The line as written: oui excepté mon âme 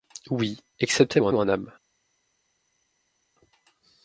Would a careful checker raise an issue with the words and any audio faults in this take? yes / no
yes